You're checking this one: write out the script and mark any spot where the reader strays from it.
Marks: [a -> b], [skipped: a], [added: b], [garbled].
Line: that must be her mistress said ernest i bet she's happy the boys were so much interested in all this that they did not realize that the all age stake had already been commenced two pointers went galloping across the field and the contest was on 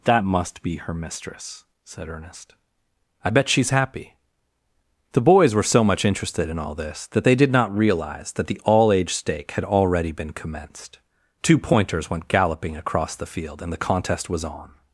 that must be her mistress said ernest i bet she's happy the boys were so much interested in all this that they did not realize that the all age stake had already been commenced two pointers went galloping across the field and the contest was on